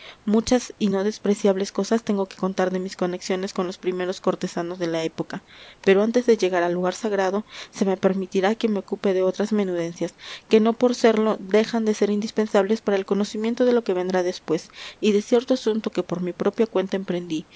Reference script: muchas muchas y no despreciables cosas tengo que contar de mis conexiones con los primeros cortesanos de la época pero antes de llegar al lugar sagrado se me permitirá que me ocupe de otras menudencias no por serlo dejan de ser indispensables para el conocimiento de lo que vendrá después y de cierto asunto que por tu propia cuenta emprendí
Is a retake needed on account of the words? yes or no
yes